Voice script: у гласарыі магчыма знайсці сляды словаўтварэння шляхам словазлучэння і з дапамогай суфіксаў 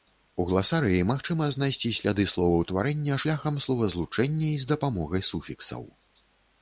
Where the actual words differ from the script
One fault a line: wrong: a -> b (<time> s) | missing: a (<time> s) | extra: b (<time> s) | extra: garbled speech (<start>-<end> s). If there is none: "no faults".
no faults